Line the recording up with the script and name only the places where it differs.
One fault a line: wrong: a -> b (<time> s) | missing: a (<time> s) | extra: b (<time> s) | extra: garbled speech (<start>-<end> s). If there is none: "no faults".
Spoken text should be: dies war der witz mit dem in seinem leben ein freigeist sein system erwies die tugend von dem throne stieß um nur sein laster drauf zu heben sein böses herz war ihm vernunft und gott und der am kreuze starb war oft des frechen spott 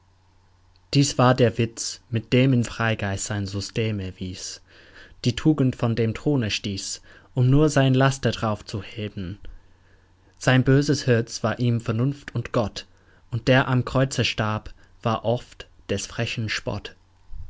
missing: seinem leben ein (2.6 s)